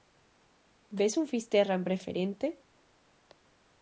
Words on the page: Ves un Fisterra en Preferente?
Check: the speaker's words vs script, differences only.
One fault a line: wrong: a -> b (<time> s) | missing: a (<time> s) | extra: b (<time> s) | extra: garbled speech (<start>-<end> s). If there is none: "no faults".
no faults